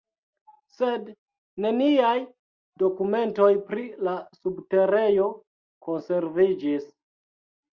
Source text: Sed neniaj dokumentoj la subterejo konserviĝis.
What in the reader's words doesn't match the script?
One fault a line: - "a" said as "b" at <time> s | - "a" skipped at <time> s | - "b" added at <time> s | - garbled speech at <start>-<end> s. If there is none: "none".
- "pri" added at 3.7 s